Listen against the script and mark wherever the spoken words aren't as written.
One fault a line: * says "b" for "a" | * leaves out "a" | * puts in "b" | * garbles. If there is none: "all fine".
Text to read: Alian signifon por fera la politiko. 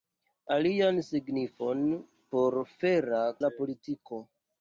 all fine